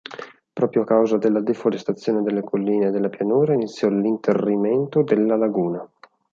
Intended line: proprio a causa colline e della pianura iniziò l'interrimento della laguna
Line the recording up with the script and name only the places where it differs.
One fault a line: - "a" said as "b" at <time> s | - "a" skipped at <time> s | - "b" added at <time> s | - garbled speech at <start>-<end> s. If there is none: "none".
- "della deforestazione delle" added at 1.2 s